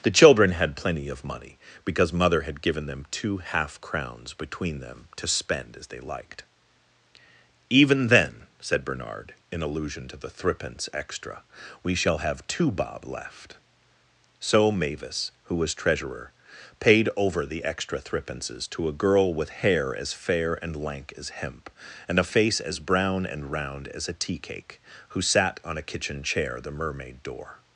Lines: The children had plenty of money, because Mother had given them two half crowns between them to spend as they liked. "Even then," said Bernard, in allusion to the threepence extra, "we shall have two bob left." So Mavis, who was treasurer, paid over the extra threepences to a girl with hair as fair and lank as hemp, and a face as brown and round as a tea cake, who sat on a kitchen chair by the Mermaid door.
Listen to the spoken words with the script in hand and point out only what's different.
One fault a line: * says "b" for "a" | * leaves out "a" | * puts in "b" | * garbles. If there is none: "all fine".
* leaves out "by"